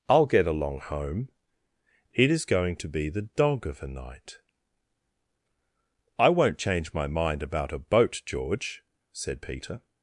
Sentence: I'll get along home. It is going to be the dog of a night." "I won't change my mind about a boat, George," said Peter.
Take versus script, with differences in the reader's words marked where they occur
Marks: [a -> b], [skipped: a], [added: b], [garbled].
I'll get along home. It is going to be the dog of a night." "I won't change my mind about a boat, George," said Peter.